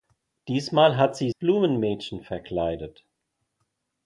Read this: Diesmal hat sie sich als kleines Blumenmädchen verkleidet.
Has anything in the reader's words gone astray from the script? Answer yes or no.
yes